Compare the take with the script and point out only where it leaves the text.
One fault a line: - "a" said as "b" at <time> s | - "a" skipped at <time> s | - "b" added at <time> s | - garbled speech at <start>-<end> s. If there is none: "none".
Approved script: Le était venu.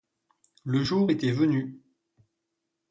- "jour" added at 0.8 s